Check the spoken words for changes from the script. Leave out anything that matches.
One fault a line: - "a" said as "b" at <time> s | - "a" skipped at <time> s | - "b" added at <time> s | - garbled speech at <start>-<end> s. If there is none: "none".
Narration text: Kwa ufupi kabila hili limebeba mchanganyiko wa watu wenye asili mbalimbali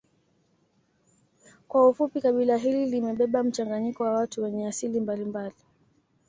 none